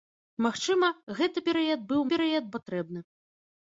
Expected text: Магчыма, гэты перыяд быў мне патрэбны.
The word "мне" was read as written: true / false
false